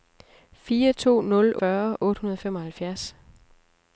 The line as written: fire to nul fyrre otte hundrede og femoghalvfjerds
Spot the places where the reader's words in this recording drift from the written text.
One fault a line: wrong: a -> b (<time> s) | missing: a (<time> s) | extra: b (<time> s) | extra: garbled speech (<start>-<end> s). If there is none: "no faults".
no faults